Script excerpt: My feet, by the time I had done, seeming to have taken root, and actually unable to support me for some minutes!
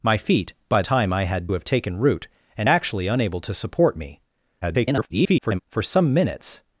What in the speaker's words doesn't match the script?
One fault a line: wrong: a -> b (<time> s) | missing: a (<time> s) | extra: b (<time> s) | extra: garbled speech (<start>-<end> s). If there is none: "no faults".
missing: the (0.8 s)
missing: done seeming to (1.5 s)
extra: garbled speech (4.6-5.6 s)